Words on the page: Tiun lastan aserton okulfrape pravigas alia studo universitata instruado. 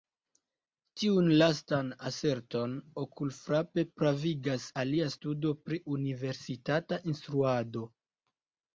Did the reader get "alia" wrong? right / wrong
right